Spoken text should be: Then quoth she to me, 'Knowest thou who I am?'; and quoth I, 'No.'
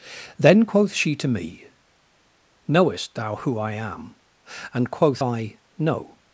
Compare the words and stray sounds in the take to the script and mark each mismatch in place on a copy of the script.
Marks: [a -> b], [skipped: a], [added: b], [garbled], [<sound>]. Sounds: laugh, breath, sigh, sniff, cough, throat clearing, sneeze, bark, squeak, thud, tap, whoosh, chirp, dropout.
Then quoth she to me, 'Knowest thou who I am?'; and quoth I, 'No.'